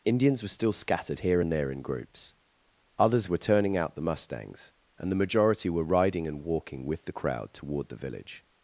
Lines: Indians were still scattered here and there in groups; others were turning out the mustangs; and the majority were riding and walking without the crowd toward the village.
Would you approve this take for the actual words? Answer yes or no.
no